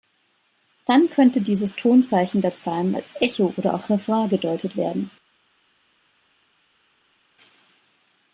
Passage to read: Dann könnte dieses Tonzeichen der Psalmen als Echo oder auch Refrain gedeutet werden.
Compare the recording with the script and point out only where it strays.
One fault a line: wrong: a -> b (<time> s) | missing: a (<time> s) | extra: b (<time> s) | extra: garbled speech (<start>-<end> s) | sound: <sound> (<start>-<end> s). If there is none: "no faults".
no faults